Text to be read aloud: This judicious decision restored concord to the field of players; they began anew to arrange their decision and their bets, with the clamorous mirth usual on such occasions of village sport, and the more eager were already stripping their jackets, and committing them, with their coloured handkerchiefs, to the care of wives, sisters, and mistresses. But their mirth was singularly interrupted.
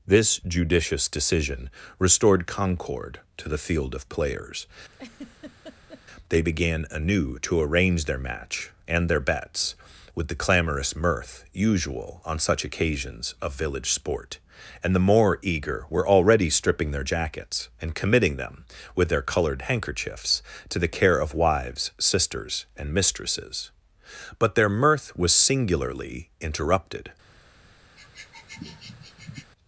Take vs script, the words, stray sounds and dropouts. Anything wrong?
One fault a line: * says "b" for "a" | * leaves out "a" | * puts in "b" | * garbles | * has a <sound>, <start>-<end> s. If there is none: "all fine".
* has a laugh, 4.9-6.0 s
* says "match" for "decision"
* has a sniff, 28.0-29.5 s